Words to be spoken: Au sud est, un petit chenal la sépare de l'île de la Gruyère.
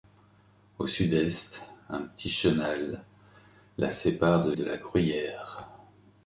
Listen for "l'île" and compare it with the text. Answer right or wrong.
wrong